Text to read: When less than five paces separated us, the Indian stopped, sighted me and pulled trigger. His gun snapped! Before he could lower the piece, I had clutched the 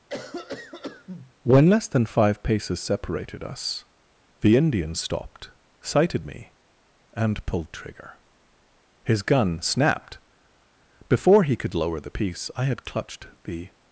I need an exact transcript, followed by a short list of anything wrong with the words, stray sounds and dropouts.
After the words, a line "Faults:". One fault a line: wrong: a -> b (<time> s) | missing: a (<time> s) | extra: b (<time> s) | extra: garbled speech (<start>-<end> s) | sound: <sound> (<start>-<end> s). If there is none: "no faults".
When less than five paces separated us, the Indian stopped, sighted me and pulled trigger. His gun snapped! Before he could lower the piece, I had clutched the
Faults:
sound: cough (0.1-1.3 s)